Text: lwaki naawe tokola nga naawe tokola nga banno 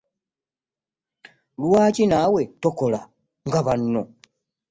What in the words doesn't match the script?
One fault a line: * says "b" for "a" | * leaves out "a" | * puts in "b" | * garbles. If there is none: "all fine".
* leaves out "naawe tokola nga"